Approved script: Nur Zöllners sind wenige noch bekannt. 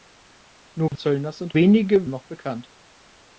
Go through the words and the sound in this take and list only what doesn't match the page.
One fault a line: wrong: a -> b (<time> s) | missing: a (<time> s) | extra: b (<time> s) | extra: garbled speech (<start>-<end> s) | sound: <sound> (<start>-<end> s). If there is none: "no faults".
sound: dropout (0.9-0.9 s)